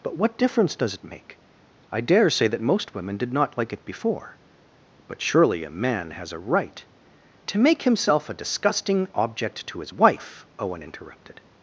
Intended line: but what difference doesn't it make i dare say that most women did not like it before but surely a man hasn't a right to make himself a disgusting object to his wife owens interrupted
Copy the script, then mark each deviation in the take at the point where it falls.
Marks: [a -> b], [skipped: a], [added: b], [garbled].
but what difference [doesn't -> does] it make i dare say that most women did not like it before but surely a man [hasn't -> has] a right to make himself a disgusting object to his wife [owens -> owen] interrupted